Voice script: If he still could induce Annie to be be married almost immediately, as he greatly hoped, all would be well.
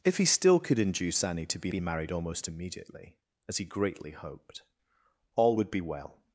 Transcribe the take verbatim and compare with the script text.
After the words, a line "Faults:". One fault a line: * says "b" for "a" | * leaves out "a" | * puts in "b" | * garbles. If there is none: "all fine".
If he still could induce Annie to be be married almost immediately, as he greatly hoped, all would be well.
Faults:
all fine